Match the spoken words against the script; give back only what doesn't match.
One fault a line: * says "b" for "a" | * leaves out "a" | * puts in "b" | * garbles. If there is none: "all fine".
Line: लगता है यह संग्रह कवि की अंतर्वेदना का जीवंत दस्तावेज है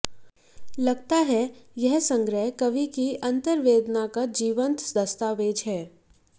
all fine